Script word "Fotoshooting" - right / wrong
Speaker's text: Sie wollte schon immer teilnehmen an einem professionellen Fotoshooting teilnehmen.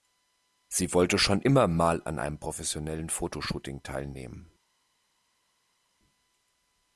right